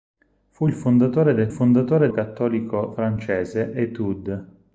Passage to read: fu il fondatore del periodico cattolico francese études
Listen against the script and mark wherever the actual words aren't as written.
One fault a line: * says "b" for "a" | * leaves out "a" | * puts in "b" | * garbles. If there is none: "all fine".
* says "fondatore" for "periodico"